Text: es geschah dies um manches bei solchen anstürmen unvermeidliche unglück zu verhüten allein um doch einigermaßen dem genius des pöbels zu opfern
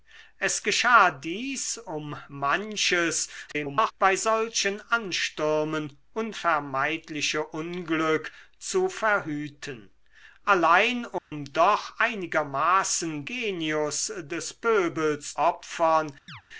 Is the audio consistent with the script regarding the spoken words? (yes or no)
no